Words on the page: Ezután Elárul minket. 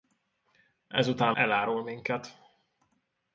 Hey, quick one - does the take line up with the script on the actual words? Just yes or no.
yes